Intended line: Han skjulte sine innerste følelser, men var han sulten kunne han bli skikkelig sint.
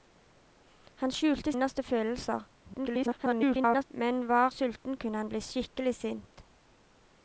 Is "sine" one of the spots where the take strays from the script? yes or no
yes